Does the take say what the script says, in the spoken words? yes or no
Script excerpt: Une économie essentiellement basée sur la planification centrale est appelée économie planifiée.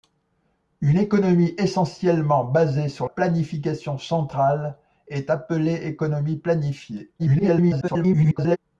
no